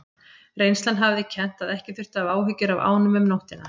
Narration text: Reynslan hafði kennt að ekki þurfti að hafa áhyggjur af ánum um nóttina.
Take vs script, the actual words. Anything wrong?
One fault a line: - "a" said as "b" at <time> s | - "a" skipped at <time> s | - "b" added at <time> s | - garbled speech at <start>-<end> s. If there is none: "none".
none